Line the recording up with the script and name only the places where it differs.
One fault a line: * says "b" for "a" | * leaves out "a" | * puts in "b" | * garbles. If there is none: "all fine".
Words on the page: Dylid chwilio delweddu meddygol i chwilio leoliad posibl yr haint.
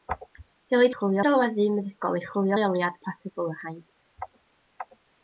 all fine